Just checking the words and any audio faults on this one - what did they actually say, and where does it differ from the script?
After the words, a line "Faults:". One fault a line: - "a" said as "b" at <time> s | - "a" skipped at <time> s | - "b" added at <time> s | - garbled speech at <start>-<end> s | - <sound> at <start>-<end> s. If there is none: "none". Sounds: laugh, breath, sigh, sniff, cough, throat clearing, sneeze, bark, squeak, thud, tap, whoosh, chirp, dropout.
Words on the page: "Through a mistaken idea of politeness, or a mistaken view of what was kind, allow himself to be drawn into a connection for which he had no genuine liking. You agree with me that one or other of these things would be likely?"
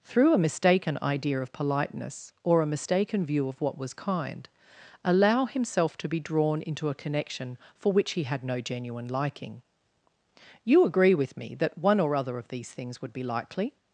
"Through a mistaken idea of politeness, or a mistaken view of what was kind, allow himself to be drawn into a connection for which he had no genuine liking. You agree with me that one or other of these things would be likely?"
Faults:
none